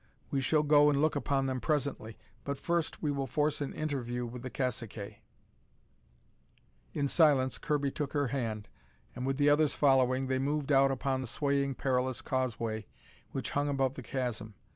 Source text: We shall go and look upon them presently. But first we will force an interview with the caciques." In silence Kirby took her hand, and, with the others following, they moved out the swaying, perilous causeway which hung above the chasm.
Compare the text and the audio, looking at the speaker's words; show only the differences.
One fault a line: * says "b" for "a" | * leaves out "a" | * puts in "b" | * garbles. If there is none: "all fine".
* puts in "upon"